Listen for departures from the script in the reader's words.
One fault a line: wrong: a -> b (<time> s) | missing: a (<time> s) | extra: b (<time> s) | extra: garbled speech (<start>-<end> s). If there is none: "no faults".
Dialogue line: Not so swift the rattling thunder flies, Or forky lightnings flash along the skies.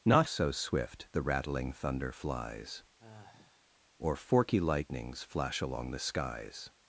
no faults